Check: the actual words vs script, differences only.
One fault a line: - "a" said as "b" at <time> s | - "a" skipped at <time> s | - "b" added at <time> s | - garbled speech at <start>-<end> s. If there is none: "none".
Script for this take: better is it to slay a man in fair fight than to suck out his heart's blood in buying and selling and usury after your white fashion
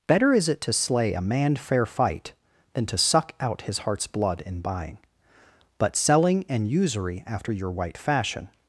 - "in" skipped at 1.6 s
- "and" said as "but" at 5.8 s